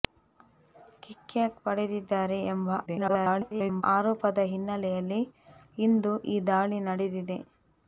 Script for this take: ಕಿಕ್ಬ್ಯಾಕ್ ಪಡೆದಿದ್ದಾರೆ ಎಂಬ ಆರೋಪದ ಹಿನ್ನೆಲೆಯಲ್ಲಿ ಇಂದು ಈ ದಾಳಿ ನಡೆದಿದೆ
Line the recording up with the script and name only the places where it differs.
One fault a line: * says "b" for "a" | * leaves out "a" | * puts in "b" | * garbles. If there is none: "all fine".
* garbles